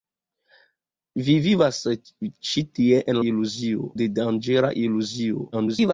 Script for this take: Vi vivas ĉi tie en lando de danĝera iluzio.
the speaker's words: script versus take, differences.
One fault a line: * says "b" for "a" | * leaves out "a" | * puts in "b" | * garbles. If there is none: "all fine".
* says "iluzio" for "lando"
* garbles